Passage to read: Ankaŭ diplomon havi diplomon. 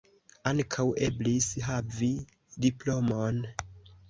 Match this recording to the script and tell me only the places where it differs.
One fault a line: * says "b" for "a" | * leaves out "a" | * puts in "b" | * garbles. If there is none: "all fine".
* says "eblis" for "diplomon"